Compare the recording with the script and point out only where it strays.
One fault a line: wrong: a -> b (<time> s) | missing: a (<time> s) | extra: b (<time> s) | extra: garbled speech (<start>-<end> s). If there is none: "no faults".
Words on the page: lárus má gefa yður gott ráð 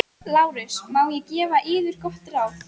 extra: ég (1.2 s)